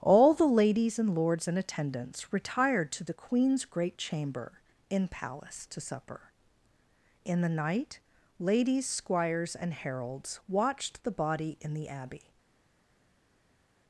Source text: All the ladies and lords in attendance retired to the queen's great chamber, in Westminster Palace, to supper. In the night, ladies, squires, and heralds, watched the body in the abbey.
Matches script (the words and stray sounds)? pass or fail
fail